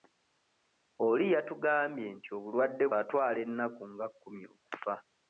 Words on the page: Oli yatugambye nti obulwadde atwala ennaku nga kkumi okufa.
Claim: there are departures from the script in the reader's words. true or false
false